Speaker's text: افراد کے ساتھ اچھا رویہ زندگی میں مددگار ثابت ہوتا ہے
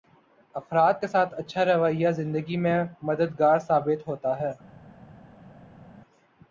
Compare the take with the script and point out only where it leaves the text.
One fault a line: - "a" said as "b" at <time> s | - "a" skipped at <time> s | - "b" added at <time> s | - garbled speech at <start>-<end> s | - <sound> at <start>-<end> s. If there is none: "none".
none